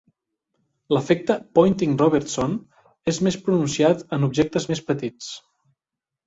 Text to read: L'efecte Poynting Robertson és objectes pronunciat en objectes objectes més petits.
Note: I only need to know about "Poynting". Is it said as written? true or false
true